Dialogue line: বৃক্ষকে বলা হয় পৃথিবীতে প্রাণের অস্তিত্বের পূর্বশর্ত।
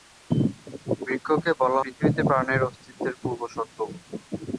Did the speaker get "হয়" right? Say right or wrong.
wrong